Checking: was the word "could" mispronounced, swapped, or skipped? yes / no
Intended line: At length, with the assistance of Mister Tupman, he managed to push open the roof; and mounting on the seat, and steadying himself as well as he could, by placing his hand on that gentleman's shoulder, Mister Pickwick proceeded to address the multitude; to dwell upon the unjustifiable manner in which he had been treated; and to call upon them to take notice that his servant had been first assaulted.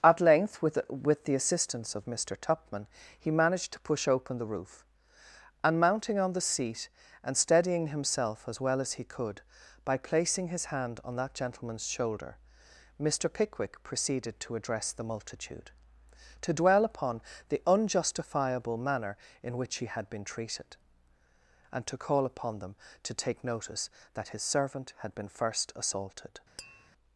no